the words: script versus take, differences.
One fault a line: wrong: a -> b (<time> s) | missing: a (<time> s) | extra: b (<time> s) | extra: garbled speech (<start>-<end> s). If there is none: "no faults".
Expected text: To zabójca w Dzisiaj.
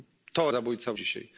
no faults